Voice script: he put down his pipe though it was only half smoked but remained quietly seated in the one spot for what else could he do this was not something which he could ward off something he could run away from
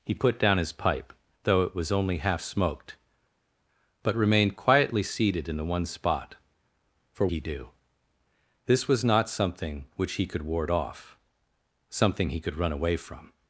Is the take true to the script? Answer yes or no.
no